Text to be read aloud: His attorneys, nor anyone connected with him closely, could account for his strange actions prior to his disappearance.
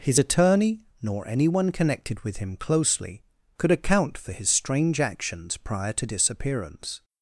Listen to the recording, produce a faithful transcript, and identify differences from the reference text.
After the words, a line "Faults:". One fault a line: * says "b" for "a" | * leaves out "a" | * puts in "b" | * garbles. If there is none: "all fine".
His attorney, nor anyone connected with him closely, could account for his strange actions prior to disappearance.
Faults:
* says "attorney" for "attorneys"
* leaves out "his"